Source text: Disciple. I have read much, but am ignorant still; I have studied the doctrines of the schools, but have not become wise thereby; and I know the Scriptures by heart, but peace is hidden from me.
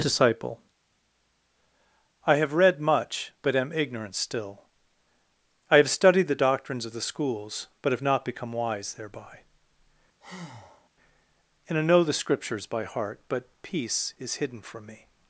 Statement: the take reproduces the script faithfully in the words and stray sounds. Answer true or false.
false